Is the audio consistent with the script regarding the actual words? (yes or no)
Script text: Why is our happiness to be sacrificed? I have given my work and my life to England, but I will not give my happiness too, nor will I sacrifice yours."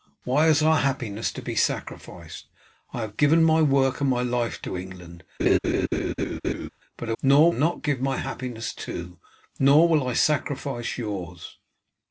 no